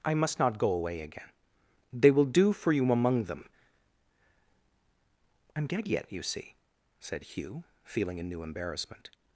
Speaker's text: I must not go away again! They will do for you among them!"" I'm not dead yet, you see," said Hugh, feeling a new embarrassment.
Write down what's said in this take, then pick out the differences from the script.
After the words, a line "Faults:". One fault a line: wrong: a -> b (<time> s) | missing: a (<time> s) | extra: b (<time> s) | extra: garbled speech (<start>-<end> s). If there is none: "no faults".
I must not go away again! They will do for you among them!"" I'm dead yet, you see," said Hugh, feeling a new embarrassment.
Faults:
missing: not (5.7 s)